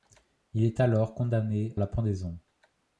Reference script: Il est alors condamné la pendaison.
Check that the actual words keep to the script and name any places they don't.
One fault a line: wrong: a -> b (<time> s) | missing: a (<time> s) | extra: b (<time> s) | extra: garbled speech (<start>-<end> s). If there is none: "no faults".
no faults